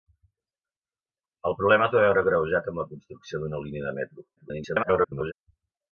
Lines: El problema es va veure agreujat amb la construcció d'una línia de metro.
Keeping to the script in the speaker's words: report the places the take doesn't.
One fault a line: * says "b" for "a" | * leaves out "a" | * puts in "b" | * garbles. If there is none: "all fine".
* garbles